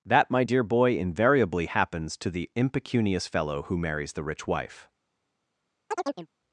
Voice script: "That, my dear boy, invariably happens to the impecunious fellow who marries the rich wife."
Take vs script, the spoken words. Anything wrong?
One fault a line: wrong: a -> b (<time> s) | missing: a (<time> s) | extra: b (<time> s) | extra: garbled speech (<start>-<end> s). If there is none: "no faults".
no faults